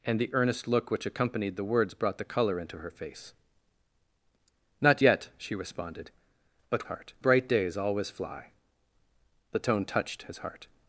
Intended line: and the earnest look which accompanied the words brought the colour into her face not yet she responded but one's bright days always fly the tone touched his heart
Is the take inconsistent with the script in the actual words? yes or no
yes